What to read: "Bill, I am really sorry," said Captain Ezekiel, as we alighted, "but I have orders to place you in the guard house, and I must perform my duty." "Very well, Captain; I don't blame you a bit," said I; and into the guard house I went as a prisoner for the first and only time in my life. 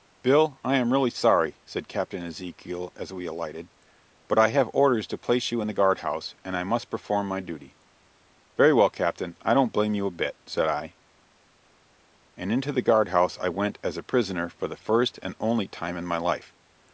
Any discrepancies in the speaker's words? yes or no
no